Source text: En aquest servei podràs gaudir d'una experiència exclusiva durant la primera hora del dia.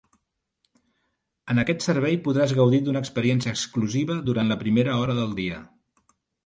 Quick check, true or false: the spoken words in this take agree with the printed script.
true